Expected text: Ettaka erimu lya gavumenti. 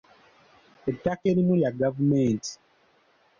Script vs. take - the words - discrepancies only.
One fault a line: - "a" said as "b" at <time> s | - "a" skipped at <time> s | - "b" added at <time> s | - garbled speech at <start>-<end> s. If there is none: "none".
none